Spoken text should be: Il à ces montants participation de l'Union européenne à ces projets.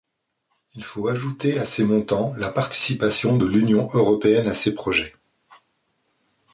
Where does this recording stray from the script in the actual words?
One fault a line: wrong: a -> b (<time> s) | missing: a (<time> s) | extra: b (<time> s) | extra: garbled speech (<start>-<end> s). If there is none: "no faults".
extra: faut ajouter (0.8 s)
extra: la (2.4 s)